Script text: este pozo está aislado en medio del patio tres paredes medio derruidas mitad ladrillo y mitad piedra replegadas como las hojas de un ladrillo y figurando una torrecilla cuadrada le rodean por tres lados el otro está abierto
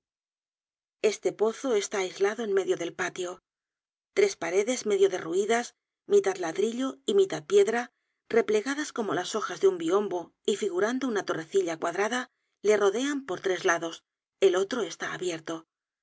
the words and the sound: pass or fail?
fail